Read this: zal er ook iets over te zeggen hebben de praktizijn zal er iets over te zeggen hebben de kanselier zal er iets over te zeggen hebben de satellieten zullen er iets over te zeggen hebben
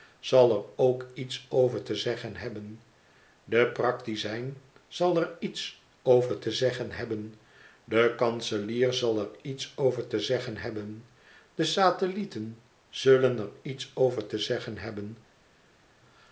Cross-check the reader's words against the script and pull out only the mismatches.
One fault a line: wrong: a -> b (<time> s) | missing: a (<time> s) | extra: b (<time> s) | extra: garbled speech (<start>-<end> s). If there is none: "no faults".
no faults